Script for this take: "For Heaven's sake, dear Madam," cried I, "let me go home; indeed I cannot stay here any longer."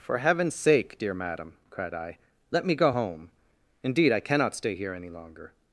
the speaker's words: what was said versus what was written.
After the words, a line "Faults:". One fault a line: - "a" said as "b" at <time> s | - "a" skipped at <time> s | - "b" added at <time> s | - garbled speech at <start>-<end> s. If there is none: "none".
"For Heaven's sake, dear Madam," cried I, "let me go home; indeed I cannot stay here any longer."
Faults:
none